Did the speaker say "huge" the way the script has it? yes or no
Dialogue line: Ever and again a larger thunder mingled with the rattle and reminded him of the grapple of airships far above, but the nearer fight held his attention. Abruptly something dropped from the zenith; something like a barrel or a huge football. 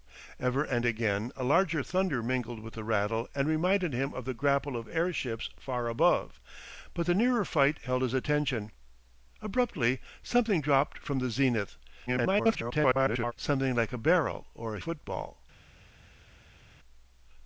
no